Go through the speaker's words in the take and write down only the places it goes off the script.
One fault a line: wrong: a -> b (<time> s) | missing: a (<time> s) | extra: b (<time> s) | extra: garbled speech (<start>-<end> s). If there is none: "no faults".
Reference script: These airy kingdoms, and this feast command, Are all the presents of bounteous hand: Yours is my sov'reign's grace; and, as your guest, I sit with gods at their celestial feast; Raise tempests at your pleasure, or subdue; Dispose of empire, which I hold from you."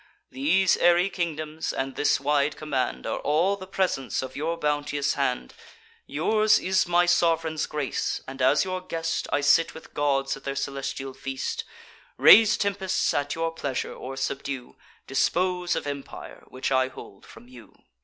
wrong: feast -> wide (2.2 s)
extra: your (4.3 s)